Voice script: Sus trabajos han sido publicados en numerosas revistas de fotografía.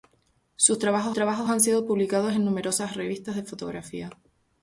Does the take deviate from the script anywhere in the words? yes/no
yes